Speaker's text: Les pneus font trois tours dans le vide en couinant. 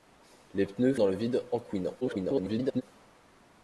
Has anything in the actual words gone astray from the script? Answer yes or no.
yes